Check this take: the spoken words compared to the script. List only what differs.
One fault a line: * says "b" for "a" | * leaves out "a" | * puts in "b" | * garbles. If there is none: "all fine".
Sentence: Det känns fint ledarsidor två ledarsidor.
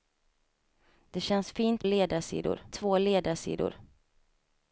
all fine